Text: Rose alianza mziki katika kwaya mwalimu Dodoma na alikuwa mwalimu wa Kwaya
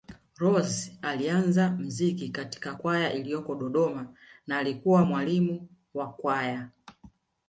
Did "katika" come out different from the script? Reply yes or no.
no